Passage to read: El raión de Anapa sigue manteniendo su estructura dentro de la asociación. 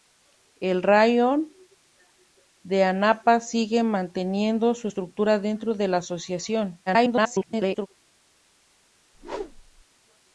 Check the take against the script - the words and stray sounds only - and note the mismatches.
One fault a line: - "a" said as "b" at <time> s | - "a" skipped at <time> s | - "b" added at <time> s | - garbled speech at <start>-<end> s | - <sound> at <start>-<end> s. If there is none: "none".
- garbled speech at 6.9-7.9 s
- whoosh at 9.1-9.8 s